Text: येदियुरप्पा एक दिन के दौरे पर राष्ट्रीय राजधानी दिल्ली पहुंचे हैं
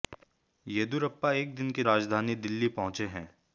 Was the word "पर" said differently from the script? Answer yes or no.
yes